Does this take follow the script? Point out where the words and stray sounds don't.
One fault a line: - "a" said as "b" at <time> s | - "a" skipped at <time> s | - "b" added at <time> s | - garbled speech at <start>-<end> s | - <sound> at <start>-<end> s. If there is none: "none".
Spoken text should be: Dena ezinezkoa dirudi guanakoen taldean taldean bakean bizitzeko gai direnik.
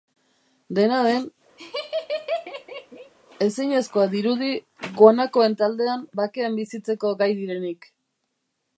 - "den" added at 1.1 s
- laugh at 1.6-3.1 s
- "taldean" skipped at 6.1 s